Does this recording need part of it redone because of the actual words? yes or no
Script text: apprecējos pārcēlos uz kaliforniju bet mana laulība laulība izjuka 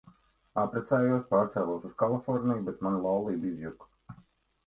yes